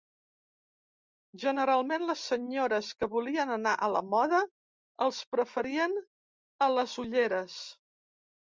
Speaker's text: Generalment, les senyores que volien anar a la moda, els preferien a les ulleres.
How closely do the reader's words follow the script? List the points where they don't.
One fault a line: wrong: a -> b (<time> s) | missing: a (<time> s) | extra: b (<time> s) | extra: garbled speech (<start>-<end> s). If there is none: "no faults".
no faults